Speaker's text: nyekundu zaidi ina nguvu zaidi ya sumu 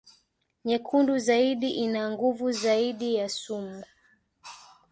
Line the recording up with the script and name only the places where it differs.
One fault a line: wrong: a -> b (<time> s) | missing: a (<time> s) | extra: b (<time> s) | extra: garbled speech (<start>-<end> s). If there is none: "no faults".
no faults